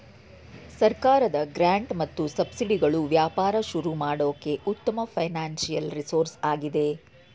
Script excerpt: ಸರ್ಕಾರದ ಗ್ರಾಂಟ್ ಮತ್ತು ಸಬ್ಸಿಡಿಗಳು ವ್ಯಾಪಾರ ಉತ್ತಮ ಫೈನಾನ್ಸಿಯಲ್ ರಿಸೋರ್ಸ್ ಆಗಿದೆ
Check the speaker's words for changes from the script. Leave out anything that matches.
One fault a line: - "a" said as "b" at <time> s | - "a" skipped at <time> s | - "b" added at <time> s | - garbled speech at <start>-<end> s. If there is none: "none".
- "ಶುರು ಮಾಡೋಕೆ" added at 3.7 s